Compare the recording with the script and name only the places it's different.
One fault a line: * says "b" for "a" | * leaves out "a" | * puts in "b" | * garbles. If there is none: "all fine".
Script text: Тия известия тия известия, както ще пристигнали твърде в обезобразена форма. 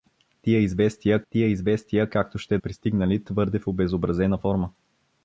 all fine